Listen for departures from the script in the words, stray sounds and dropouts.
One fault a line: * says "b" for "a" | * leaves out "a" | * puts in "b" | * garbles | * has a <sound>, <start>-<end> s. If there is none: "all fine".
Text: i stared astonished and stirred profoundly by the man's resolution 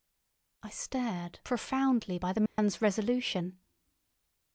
* leaves out "astonished and stirred"
* has a dropout, 2.5-2.6 s